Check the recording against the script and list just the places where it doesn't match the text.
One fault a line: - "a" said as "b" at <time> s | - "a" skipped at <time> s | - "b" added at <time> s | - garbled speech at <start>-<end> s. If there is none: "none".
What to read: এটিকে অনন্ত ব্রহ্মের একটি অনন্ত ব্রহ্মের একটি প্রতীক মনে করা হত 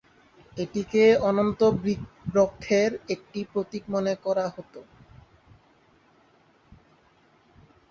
- "অনন্ত ব্রহ্মের একটি" skipped at 3.4 s